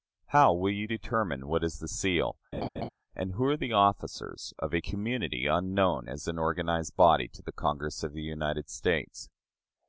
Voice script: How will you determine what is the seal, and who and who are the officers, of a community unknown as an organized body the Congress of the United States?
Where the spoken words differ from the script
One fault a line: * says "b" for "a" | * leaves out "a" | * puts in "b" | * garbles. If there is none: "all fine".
* leaves out "and who"
* puts in "to"